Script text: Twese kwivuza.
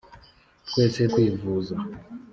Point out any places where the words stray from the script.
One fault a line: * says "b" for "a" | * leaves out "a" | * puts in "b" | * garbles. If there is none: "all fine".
all fine